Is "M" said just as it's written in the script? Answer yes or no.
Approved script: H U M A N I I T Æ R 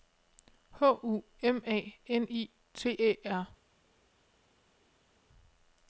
yes